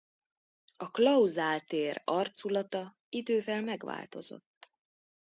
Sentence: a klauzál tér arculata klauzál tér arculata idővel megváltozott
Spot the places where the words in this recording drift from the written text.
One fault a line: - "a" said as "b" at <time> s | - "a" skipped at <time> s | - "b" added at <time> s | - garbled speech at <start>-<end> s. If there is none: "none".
- "klauzál tér arculata" skipped at 3.0 s